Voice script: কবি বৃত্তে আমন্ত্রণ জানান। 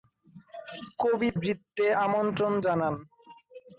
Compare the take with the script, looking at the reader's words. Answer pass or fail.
pass